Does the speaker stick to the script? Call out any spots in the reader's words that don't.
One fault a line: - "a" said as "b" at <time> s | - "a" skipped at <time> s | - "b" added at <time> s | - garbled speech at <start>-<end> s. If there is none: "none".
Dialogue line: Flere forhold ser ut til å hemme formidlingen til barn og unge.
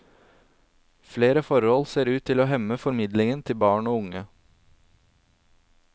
none